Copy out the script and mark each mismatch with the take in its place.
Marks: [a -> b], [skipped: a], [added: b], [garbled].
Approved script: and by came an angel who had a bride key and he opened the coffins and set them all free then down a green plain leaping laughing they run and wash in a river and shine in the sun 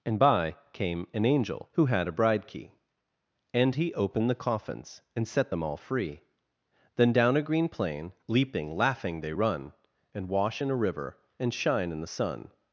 and by came an angel who had a bride key and he opened the coffins and set them all free then down a green plain leaping laughing they run and wash in a river and shine in the sun